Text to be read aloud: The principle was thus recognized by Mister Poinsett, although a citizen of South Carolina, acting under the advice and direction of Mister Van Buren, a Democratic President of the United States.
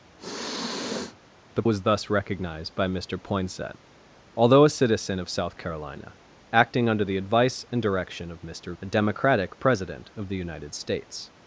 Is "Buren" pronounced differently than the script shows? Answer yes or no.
yes